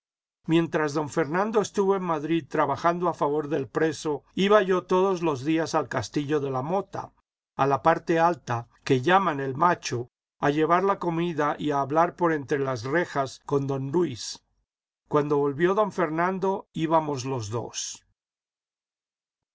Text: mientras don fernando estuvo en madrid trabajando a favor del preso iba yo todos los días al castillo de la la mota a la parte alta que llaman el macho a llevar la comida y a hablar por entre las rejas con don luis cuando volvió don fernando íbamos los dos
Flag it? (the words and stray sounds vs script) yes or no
yes